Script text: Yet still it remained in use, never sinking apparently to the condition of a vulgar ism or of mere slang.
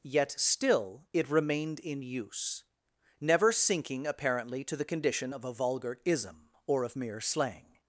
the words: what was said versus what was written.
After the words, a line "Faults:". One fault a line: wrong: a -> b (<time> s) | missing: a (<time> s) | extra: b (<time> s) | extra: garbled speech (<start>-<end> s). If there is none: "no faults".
Yet still it remained in use, never sinking apparently to the condition of a vulgar ism or of mere slang.
Faults:
no faults